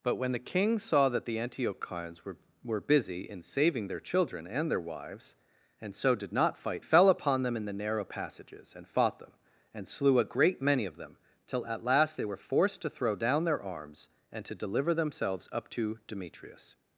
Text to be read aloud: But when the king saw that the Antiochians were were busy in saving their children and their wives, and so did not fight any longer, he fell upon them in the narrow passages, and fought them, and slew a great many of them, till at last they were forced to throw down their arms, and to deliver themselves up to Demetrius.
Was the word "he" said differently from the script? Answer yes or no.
yes